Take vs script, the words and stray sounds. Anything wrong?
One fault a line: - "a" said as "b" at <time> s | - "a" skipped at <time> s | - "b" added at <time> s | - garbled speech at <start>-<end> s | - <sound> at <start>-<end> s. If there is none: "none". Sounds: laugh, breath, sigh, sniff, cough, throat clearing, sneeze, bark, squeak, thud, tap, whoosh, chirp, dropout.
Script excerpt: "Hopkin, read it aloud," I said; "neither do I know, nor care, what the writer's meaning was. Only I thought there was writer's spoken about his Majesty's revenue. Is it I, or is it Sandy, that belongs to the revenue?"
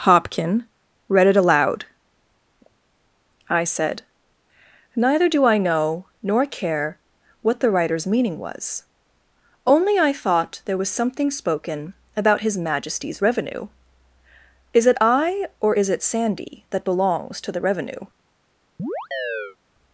- "writer's" said as "something" at 10.9 s
- chirp at 18.8-19.6 s